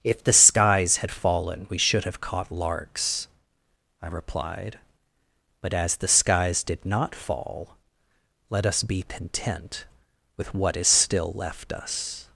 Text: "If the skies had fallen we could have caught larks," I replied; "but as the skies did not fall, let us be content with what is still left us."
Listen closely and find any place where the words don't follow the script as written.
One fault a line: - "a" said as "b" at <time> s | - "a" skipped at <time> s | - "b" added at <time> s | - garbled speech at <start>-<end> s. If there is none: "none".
- "could" said as "should" at 1.8 s